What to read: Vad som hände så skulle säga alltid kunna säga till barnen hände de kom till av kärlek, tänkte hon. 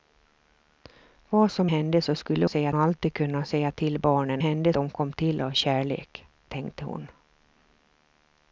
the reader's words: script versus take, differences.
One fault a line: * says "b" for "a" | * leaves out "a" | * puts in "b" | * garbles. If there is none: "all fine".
all fine